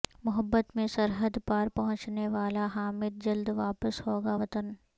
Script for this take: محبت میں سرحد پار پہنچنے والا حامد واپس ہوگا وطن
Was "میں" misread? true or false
false